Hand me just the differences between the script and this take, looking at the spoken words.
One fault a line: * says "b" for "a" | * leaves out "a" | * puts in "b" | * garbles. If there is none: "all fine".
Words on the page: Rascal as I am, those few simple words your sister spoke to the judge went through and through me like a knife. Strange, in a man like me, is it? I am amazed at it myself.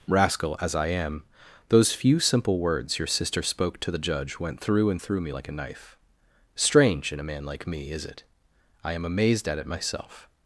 all fine